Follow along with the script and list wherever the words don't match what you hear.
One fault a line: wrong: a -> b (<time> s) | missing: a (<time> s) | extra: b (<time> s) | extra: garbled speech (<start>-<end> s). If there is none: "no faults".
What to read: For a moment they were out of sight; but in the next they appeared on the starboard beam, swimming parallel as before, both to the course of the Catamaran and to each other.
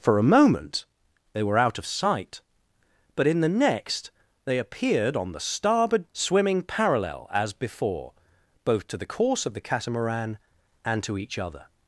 missing: beam (6.1 s)